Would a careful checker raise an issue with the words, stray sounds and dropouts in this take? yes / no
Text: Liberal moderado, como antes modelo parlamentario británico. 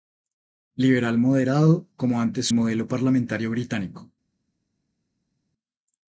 no